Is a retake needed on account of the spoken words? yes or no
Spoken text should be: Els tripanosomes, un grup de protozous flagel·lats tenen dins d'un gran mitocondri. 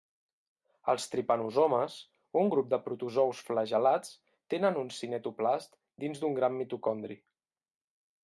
yes